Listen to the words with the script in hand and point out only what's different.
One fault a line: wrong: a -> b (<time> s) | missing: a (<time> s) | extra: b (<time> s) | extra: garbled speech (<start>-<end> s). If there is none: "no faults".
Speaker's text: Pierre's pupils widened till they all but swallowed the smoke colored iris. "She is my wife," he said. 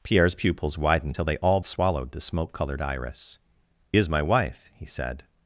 missing: but (1.6 s)
missing: She (3.4 s)